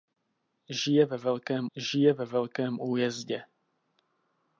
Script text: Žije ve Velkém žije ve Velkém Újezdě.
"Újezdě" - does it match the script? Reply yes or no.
yes